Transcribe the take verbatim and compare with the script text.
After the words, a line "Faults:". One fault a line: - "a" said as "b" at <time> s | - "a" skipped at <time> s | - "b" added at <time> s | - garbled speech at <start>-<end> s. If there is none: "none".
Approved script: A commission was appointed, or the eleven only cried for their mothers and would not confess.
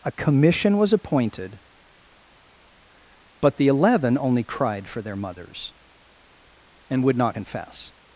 A commission was appointed, but the eleven only cried for their mothers and would not confess.
Faults:
- "or" said as "but" at 3.4 s